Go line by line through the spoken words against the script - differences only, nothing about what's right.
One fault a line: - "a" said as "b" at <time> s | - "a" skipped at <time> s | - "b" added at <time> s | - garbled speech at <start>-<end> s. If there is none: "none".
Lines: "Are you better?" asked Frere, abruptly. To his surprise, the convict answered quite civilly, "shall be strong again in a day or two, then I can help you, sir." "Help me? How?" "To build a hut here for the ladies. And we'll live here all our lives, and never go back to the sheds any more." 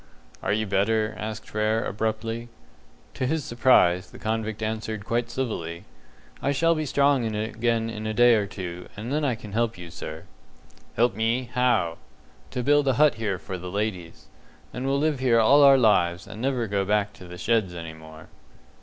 - "I" added at 6.4 s
- "and" added at 9.0 s